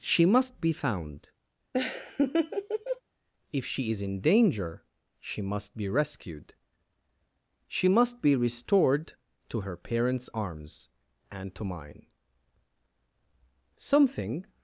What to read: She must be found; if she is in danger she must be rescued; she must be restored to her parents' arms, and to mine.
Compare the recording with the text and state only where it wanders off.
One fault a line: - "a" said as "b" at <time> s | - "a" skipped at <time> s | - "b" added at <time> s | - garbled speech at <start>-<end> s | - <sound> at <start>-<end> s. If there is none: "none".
- laugh at 1.7-3.0 s
- "Something" added at 13.8 s